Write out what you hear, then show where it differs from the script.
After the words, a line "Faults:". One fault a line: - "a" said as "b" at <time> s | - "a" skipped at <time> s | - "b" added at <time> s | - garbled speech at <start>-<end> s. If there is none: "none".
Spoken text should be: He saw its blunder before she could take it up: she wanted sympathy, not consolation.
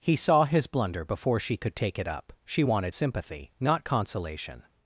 He saw his blunder before she could take it up: she wanted sympathy, not consolation.
Faults:
- "its" said as "his" at 0.5 s